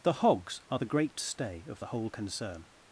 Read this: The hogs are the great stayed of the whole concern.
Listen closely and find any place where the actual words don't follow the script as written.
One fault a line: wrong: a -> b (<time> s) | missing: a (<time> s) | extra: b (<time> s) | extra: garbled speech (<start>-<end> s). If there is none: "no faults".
wrong: stayed -> stay (1.2 s)